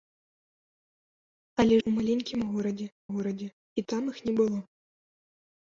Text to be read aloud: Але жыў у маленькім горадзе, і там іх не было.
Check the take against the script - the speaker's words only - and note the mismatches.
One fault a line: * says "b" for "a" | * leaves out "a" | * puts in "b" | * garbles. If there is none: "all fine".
* leaves out "жыў"
* puts in "горадзе"